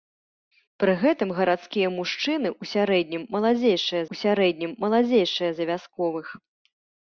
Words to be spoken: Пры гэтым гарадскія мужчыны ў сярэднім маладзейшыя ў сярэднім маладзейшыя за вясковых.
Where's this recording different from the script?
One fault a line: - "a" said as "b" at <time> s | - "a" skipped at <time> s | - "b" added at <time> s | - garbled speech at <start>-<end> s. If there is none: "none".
none